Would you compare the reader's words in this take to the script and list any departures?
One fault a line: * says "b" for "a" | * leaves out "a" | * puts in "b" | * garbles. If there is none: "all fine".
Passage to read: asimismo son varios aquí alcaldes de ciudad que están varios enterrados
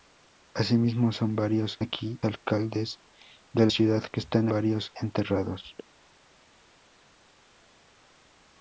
all fine